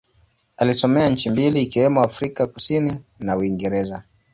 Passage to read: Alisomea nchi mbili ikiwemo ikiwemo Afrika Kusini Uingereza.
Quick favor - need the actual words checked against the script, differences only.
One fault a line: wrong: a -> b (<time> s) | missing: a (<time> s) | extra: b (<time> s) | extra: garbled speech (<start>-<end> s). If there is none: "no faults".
missing: ikiwemo (2.0 s)
extra: na (3.2 s)